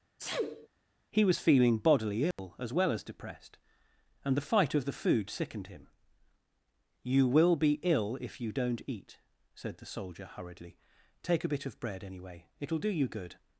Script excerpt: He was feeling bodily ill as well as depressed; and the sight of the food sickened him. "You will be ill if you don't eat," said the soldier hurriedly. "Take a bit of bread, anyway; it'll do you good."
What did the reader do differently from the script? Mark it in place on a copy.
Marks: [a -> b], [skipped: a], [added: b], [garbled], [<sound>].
[sneeze] He was feeling bodily ill [dropout] as well as depressed; and the [sight -> fight] of the food sickened him. "You will be ill if you don't eat," said the soldier hurriedly. "Take a bit of bread, anyway; it'll do you good."